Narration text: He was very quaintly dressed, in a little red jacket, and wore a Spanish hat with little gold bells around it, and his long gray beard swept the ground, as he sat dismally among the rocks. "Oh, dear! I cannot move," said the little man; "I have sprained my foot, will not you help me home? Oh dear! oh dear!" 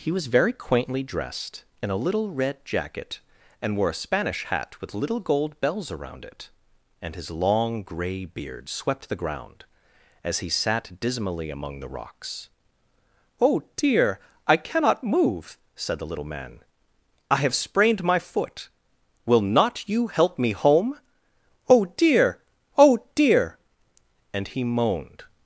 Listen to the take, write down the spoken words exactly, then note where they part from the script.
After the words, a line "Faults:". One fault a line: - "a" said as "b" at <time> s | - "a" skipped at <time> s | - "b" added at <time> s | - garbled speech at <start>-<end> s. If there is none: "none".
He was very quaintly dressed, in a little red jacket, and wore a Spanish hat with little gold bells around it, and his long gray beard swept the ground, as he sat dismally among the rocks. "Oh, dear! I cannot move," said the little man; "I have sprained my foot, will not you help me home? Oh dear! oh dear!" and he moaned
Faults:
- "and he moaned" added at 24.3 s